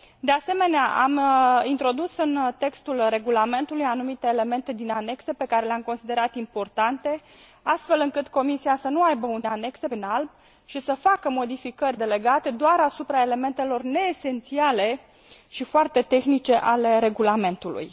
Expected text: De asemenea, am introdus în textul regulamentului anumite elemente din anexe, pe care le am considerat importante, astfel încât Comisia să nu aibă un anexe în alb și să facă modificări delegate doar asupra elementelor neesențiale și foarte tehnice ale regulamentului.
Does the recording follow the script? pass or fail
pass